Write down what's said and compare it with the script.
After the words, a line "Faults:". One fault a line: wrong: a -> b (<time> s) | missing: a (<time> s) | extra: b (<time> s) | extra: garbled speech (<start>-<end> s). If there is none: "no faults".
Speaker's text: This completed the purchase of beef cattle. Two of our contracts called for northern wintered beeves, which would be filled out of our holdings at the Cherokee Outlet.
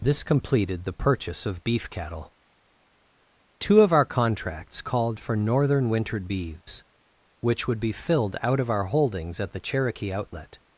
This completed the purchase of beef cattle. Two of our contracts called for northern wintered beeves, which would be filled out of our holdings at the Cherokee Outlet.
Faults:
no faults